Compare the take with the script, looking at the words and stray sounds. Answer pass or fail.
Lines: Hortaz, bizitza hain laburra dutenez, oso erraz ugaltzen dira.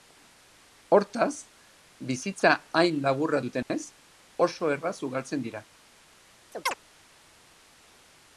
fail